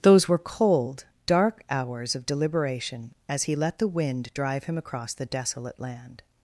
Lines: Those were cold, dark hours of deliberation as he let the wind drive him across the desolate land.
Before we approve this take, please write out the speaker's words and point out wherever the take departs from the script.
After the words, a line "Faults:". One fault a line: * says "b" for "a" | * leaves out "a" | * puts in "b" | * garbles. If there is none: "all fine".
Those were cold, dark hours of deliberation as he let the wind drive him across the desolate land.
Faults:
all fine